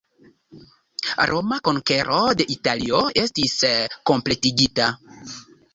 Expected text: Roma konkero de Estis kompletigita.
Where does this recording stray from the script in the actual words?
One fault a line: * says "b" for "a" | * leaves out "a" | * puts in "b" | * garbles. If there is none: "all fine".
* puts in "Italio"